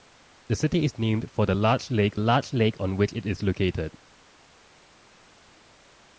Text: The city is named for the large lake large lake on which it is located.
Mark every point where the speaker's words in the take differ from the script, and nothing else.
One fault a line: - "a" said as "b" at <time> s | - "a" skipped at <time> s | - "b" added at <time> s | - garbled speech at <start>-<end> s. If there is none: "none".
none